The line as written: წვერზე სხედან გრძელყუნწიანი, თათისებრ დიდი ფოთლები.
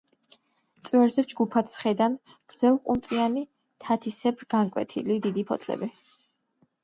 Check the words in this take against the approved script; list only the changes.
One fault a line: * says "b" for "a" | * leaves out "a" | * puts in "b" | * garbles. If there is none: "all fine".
* puts in "ჯგუფად"
* puts in "განკვეთილი"